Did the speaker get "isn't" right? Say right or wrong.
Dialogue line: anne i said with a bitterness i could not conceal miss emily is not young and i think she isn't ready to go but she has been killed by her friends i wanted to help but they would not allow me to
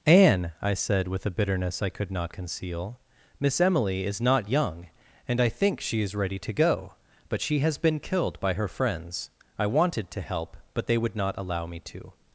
wrong